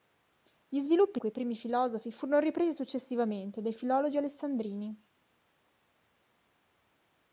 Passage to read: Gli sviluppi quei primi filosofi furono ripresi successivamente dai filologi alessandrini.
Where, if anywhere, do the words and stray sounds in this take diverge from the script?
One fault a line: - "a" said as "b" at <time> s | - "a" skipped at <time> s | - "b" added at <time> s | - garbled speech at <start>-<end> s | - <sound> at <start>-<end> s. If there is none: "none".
none